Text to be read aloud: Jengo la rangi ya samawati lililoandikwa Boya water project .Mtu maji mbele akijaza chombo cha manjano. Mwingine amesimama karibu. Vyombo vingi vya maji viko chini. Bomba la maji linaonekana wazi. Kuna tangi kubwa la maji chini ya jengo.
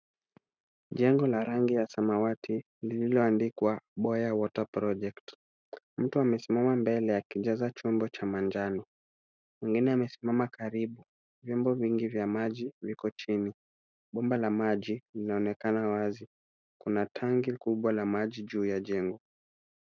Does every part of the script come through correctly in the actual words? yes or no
no